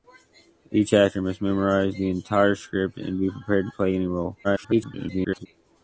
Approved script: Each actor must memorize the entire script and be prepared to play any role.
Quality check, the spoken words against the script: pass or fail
fail